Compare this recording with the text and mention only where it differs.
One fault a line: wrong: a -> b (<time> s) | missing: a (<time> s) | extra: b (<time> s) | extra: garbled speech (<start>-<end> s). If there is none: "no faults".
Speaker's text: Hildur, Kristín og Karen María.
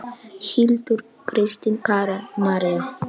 missing: og (1.8 s)